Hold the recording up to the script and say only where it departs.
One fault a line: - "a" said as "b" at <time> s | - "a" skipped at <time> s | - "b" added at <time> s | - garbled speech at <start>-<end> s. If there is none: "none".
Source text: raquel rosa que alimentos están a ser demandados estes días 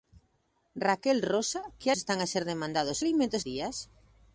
- "alimentos" skipped at 1.9 s
- "estes" said as "alimentos" at 3.0 s